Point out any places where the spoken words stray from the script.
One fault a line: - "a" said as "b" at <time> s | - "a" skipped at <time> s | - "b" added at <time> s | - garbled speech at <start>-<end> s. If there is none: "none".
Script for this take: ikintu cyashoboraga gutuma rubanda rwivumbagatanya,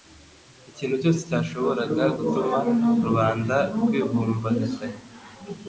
- "cyose" added at 1.0 s